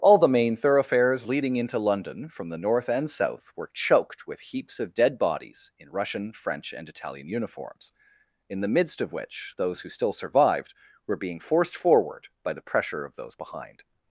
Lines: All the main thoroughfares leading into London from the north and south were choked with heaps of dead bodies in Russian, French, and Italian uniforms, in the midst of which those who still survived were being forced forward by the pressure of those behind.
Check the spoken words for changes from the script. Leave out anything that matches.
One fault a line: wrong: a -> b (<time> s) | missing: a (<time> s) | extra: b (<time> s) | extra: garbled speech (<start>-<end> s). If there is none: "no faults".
no faults